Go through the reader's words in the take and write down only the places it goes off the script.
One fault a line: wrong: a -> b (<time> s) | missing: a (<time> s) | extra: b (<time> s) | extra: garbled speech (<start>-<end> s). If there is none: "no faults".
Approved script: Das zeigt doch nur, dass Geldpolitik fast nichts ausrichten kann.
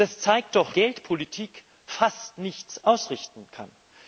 missing: nur dass (0.8 s)